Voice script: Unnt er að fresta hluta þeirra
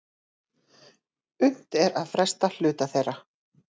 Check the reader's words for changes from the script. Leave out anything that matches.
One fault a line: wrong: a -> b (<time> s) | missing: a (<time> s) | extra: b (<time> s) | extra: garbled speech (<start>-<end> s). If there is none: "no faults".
no faults